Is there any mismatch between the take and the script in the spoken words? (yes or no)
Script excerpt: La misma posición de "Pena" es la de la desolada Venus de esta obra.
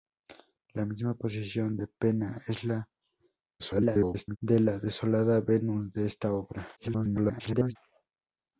yes